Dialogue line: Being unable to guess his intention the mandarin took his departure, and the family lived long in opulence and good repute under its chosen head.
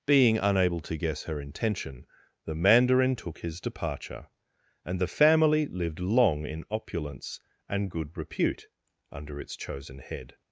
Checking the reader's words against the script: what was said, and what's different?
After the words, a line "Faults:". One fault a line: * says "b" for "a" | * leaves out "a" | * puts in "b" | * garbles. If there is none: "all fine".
Being unable to guess her intention the mandarin took his departure, and the family lived long in opulence and good repute under its chosen head.
Faults:
* says "her" for "his"